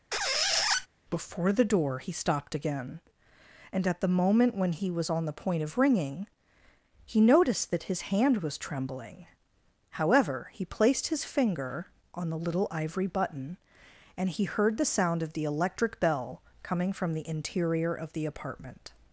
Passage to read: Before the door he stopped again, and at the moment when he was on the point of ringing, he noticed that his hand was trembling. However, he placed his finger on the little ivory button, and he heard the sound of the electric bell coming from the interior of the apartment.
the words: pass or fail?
pass